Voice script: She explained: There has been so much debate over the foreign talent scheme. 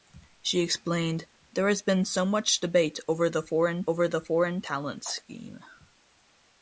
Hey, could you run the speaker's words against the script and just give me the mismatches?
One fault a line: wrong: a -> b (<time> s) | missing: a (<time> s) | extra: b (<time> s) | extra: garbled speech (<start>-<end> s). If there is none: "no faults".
extra: over the foreign (3.9 s)